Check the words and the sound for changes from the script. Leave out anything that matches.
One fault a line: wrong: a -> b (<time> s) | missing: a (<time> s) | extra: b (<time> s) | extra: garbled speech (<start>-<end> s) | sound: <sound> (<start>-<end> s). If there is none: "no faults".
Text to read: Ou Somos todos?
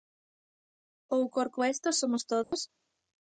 extra: Corcoesto (1.4 s)
sound: dropout (2.4-2.5 s)